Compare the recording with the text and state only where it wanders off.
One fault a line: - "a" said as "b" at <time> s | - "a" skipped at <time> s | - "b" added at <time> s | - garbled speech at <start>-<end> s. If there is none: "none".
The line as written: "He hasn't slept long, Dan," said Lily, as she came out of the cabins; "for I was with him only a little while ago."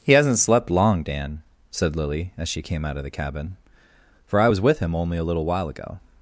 - "cabins" said as "cabin" at 3.1 s